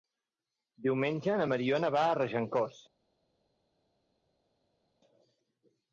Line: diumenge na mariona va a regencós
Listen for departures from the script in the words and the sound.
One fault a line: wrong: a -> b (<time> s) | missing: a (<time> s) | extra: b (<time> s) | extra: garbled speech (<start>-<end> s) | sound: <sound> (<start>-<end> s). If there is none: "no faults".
no faults